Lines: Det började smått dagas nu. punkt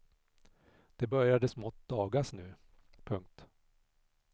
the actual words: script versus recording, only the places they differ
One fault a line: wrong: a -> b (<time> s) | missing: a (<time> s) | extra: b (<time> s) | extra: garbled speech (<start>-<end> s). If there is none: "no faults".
no faults